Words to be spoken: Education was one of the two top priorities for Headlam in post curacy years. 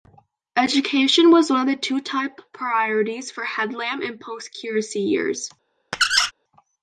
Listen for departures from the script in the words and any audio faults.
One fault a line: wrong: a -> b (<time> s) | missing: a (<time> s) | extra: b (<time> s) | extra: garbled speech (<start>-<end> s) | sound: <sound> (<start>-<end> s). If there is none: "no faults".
sound: squeak (5.9-6.3 s)